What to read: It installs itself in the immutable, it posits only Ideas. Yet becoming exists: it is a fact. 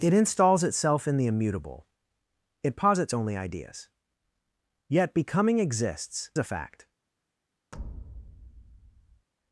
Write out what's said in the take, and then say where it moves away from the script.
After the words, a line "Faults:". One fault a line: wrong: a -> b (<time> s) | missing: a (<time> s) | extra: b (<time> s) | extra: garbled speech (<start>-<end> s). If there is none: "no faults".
It installs itself in the immutable, it posits only Ideas. Yet becoming exists: a fact.
Faults:
missing: it is (6.3 s)